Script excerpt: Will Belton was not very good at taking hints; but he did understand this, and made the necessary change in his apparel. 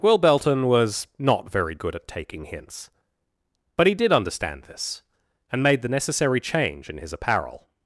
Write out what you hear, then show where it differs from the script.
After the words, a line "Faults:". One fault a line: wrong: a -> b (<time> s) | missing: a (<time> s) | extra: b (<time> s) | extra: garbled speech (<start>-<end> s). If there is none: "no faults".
Will Belton was not very good at taking hints; but he did understand this, and made the necessary change in his apparel.
Faults:
no faults